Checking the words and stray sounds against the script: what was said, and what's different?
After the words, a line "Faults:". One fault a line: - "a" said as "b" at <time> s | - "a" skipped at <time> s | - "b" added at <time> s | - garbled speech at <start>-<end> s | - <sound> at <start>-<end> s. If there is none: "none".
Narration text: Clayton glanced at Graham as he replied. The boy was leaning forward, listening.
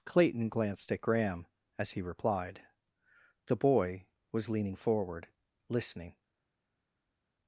Clayton glanced at Graham as he replied. The boy was leaning forward, listening.
Faults:
none